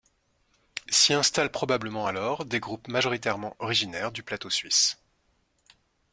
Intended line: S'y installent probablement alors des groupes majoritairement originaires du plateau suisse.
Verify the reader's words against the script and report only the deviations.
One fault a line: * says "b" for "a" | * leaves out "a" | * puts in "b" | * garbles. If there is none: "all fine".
all fine